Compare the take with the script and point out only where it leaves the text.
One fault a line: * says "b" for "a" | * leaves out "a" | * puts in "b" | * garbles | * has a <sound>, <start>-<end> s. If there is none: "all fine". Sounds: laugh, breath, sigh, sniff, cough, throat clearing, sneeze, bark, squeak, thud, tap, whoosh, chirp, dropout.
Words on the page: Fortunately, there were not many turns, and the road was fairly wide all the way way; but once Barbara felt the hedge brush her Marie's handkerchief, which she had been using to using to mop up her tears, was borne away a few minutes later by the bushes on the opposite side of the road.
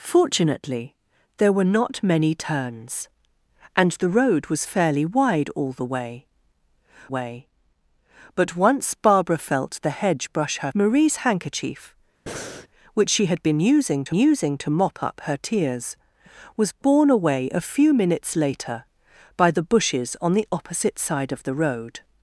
* has a breath, 12.3-12.7 s